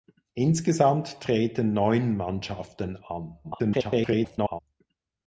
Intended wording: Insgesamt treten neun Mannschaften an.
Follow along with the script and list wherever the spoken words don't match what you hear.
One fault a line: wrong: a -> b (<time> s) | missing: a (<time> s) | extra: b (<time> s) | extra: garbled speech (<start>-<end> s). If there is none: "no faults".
extra: garbled speech (3.4-4.6 s)